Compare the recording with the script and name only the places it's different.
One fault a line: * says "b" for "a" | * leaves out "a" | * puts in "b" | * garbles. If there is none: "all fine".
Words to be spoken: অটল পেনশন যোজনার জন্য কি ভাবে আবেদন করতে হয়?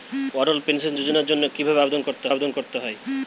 * puts in "আবেদন করতে"